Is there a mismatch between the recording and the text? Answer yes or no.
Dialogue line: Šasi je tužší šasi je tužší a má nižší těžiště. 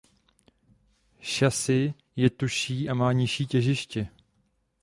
yes